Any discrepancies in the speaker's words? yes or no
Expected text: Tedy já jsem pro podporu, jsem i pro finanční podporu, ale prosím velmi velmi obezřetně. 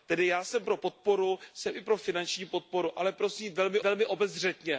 no